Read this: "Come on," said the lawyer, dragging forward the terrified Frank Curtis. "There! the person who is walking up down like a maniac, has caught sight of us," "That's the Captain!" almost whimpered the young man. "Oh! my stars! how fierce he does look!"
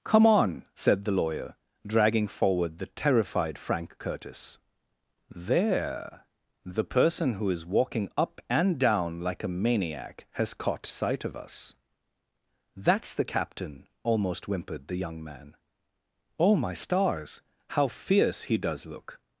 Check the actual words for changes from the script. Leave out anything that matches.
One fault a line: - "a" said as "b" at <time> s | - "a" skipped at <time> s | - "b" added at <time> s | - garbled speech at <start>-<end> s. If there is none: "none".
- "and" added at 8.5 s